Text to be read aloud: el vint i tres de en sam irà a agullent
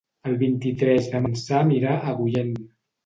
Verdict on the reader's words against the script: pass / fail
pass